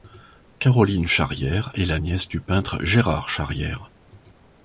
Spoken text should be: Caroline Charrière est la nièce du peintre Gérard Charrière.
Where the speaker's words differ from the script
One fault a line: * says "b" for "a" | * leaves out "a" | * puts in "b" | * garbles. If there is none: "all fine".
all fine